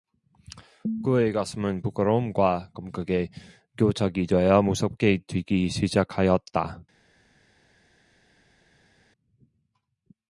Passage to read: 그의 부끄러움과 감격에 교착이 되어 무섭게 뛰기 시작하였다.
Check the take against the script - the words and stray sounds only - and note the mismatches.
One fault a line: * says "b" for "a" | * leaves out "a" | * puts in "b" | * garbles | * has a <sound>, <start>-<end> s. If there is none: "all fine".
* puts in "가슴은"